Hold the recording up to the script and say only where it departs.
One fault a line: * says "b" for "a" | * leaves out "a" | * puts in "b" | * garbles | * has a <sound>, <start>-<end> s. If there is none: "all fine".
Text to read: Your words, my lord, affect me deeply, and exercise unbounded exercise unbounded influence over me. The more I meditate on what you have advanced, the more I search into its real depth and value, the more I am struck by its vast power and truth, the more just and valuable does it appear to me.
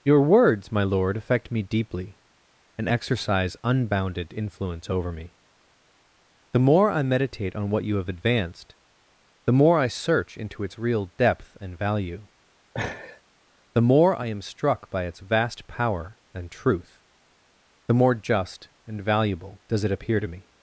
* leaves out "exercise unbounded"
* has a laugh, 12.7-13.2 s